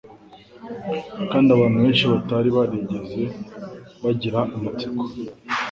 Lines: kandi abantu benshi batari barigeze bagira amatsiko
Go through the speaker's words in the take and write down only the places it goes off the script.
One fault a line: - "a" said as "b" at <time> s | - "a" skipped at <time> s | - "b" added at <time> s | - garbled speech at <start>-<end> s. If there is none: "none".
none